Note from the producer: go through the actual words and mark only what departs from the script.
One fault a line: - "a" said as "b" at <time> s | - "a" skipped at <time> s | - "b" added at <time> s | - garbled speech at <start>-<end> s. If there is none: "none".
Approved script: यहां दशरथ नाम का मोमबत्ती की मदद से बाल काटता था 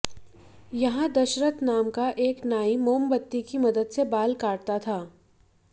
- "एक नाई" added at 2.2 s